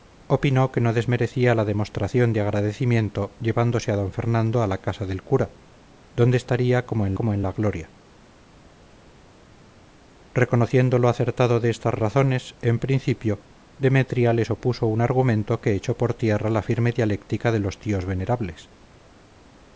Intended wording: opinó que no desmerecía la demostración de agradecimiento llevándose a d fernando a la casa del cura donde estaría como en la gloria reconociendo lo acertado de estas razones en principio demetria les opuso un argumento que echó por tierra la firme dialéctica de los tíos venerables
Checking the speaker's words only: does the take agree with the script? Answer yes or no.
no